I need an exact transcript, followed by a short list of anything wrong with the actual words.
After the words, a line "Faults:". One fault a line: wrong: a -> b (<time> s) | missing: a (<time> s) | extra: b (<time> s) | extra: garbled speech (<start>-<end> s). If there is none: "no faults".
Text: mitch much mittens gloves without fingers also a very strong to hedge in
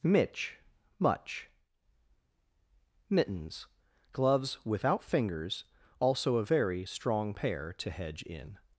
mitch much mittens gloves without fingers also a very strong pair to hedge in
Faults:
extra: pair (7.3 s)